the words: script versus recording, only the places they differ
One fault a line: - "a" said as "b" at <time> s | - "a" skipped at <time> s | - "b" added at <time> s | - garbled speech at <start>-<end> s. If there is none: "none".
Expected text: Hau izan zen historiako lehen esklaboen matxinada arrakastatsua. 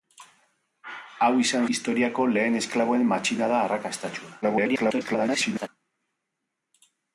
- "zen" skipped at 1.7 s
- garbled speech at 4.4-5.7 s